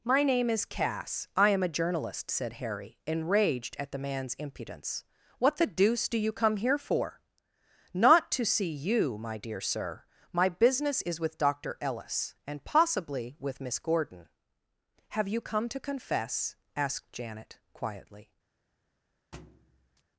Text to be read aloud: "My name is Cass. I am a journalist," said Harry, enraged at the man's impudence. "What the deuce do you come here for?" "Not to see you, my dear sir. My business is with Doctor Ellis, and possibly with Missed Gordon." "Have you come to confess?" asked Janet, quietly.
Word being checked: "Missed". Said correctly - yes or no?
no